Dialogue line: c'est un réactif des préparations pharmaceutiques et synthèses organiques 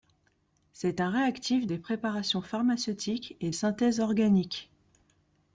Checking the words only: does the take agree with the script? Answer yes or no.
yes